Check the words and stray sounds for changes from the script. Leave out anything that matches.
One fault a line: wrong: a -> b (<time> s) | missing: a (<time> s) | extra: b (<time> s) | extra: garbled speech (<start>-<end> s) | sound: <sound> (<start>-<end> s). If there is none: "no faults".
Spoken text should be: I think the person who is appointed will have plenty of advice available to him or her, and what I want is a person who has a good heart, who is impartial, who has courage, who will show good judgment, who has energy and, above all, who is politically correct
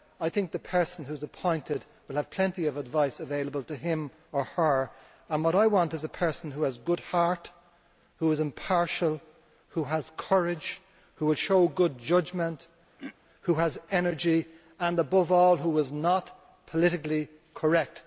sound: throat clearing (13.0-13.2 s)
extra: not (15.9 s)